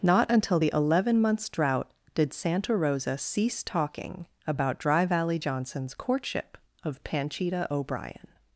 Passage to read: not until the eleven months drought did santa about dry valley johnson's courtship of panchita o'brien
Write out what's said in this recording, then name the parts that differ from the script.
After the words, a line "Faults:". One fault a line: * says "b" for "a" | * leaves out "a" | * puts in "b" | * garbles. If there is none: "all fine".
not until the eleven months drought did santa rosa cease talking about dry valley johnson's courtship of panchita o'brien
Faults:
* puts in "rosa cease talking"